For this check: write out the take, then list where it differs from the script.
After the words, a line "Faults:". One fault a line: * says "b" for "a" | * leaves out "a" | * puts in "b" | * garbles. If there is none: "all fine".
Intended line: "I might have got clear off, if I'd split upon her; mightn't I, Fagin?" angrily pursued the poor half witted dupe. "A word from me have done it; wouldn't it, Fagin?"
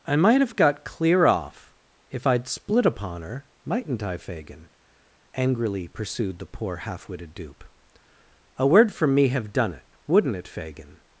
"I might have got clear off, if I'd split upon her; mightn't I, Fagin?" angrily pursued the poor half witted dupe. "A word from me have done it; wouldn't it, Fagin?"
Faults:
all fine